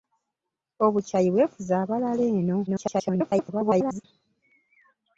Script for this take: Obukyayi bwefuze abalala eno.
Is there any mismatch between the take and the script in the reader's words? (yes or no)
yes